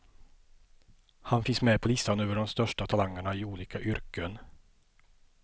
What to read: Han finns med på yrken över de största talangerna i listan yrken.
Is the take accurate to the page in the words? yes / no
no